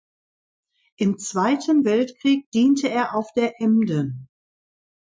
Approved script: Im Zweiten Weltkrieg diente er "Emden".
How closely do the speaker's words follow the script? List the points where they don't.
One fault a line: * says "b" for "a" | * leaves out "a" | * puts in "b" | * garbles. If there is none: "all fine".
* puts in "auf der"